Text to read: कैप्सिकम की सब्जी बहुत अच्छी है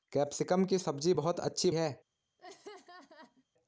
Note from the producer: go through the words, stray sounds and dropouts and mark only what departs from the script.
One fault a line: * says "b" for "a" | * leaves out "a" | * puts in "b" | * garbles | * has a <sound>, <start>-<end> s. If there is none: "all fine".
* has a laugh, 2.4-3.5 s